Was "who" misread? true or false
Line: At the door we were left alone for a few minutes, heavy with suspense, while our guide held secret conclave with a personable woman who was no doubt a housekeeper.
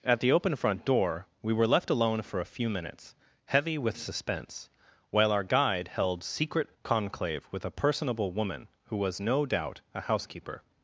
false